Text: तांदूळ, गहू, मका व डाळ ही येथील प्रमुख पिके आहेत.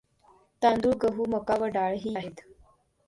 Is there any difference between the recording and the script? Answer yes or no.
yes